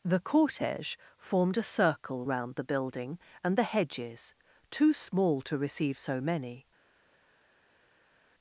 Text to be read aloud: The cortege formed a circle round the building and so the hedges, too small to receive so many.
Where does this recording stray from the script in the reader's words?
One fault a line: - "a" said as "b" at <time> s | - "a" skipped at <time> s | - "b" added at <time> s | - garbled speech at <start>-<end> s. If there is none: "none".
- "so" skipped at 3.6 s